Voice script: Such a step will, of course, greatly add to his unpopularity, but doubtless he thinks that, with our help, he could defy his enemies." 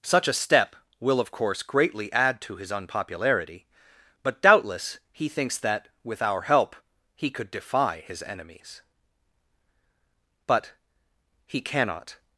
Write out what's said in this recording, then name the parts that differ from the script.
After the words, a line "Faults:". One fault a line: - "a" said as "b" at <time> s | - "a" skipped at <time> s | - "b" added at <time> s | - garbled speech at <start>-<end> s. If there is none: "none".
Such a step will, of course, greatly add to his unpopularity, but doubtless he thinks that, with our help, he could defy his enemies." "But, he cannot
Faults:
- "But he cannot" added at 10.5 s